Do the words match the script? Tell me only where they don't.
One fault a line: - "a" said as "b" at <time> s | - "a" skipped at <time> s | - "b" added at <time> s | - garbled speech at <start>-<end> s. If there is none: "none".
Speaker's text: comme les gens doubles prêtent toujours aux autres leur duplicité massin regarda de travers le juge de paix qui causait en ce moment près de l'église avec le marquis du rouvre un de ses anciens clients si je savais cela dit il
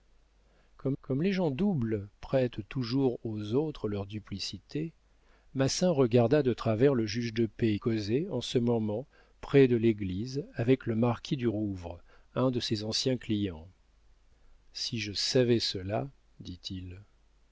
- "comme" added at 1.0 s
- "qui" skipped at 7.8 s